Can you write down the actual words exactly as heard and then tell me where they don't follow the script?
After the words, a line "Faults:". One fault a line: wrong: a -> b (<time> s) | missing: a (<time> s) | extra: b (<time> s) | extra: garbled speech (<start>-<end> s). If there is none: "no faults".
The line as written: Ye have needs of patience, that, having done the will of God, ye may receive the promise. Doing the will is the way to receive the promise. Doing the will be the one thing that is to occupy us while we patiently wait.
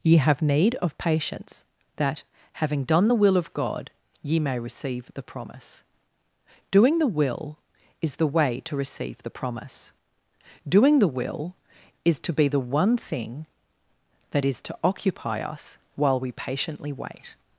Ye have need of patience, that, having done the will of God, ye may receive the promise. Doing the will is the way to receive the promise. Doing the will is to be the one thing that is to occupy us while we patiently wait.
Faults:
wrong: needs -> need (0.4 s)
extra: is to (12.1 s)